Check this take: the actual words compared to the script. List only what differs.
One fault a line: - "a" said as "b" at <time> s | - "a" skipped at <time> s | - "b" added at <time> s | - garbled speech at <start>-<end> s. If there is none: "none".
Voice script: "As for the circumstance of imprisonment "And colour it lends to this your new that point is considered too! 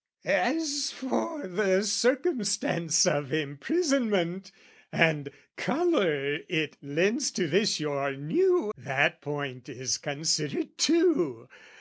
none